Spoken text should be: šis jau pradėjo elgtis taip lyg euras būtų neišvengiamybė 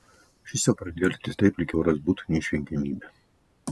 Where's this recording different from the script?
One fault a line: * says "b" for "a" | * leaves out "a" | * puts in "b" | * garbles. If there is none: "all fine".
all fine